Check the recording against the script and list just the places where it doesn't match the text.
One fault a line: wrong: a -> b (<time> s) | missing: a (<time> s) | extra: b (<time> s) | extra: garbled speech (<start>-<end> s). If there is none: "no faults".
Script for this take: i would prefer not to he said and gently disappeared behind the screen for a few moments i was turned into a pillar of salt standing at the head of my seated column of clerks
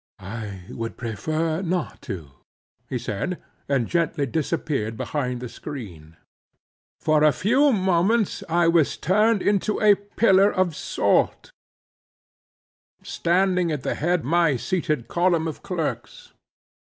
missing: of (14.2 s)